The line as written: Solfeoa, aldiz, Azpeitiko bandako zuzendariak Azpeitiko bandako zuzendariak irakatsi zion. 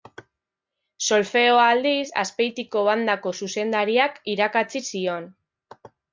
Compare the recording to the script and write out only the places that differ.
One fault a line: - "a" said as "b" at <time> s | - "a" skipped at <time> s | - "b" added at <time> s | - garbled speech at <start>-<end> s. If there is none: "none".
- "Azpeitiko bandako zuzendariak" skipped at 4.2 s